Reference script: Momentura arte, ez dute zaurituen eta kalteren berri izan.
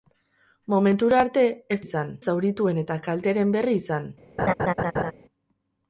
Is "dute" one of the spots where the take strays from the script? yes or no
yes